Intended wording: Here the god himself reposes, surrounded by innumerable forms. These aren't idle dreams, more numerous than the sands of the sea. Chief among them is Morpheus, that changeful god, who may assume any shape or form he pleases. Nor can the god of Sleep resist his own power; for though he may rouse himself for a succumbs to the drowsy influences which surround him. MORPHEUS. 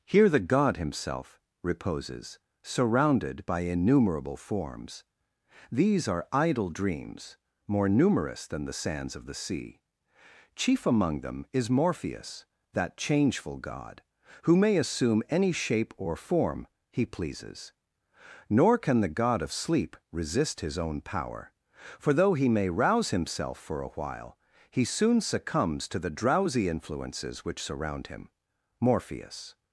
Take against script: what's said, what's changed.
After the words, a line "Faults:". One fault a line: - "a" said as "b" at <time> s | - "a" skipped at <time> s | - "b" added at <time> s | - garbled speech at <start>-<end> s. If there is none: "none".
Here the god himself reposes, surrounded by innumerable forms. These are idle dreams, more numerous than the sands of the sea. Chief among them is Morpheus, that changeful god, who may assume any shape or form he pleases. Nor can the god of Sleep resist his own power; for though he may rouse himself for a while, he soon succumbs to the drowsy influences which surround him. MORPHEUS.
Faults:
- "aren't" said as "are" at 6.1 s
- "while he soon" added at 23.9 s